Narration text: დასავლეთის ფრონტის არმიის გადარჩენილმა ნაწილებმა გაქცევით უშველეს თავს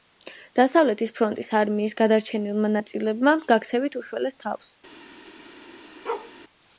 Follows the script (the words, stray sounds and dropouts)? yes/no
no